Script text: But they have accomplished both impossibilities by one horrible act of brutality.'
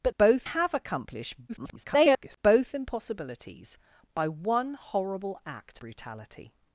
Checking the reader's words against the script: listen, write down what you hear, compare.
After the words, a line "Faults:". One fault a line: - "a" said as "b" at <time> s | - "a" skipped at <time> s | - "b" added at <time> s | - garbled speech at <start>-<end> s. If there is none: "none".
But both have accomplished [garbled] both impossibilities by one horrible act brutality.'
Faults:
- "they" said as "both" at 0.2 s
- garbled speech at 1.5-2.4 s
- "of" skipped at 5.8 s